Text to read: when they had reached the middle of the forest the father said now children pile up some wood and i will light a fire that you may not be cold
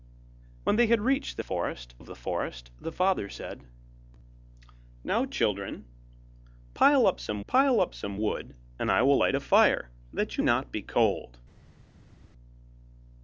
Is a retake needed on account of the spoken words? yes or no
yes